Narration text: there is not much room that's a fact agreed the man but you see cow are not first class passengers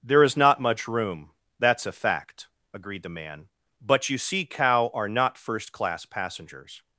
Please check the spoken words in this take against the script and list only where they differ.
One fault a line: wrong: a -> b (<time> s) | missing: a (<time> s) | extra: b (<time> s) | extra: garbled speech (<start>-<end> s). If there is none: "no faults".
no faults